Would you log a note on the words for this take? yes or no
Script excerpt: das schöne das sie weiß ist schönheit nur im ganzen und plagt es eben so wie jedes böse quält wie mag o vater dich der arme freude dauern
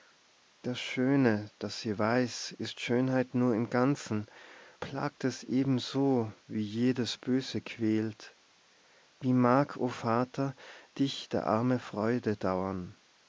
yes